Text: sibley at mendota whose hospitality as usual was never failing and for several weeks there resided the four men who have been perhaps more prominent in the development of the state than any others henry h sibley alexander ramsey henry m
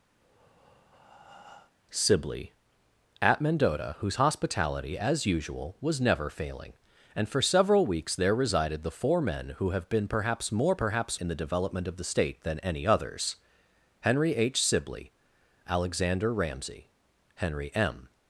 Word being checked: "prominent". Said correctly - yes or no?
no